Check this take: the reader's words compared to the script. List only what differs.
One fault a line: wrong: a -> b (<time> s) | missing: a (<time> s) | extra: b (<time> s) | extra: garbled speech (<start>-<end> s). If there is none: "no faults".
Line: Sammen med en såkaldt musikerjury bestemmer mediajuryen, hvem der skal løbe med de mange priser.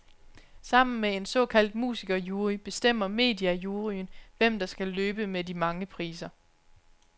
no faults